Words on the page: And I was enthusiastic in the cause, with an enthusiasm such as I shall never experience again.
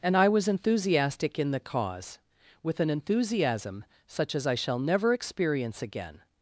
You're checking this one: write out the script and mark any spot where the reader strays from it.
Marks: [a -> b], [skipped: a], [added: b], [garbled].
And I was enthusiastic in the cause, with an enthusiasm such as I shall never experience again.